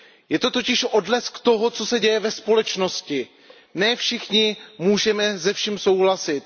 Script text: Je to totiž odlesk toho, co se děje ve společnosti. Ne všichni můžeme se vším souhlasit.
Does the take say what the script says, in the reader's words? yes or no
yes